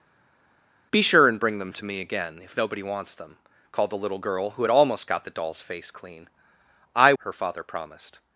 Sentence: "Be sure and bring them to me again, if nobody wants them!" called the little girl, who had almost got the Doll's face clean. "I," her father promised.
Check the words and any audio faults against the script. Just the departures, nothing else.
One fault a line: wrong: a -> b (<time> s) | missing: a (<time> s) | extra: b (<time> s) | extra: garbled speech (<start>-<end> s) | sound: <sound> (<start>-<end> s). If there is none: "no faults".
no faults